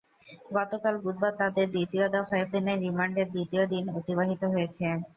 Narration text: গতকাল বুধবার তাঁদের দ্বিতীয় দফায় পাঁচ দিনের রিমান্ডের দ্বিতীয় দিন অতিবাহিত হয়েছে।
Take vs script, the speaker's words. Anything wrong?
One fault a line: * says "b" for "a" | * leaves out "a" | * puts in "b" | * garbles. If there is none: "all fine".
* leaves out "পাঁচ"